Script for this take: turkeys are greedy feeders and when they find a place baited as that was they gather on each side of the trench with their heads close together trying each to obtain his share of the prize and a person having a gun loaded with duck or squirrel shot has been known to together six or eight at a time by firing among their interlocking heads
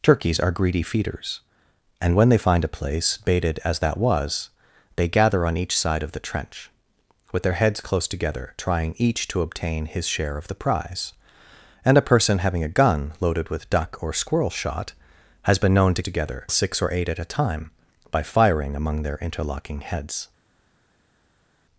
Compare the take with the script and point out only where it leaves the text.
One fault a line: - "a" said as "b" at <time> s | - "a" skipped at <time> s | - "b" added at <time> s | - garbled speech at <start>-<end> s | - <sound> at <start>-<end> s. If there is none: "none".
none